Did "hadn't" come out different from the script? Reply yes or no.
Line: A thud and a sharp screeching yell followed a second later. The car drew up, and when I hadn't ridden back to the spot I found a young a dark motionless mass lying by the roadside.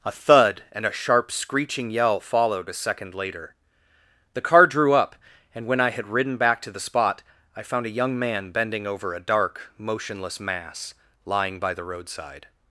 yes